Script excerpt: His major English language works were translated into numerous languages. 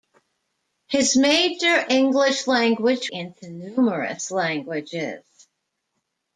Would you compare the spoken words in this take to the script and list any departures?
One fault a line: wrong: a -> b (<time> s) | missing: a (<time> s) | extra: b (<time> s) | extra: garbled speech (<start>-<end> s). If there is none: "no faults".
missing: works were translated (3.1 s)